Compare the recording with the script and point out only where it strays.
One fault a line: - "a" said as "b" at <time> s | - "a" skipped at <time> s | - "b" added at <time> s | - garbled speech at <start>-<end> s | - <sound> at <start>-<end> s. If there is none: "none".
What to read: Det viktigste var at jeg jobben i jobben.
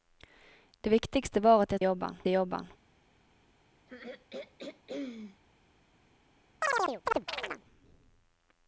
- throat clearing at 3.9-5.4 s
- chirp at 6.6-7.6 s